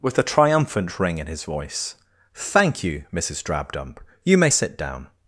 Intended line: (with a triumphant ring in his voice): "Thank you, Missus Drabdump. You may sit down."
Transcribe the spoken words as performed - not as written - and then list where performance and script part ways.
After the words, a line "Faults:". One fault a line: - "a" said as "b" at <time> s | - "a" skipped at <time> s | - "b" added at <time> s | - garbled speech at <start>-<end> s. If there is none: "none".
(with a triumphant ring in his voice): "Thank you, Missus Drabdump. You may sit down."
Faults:
none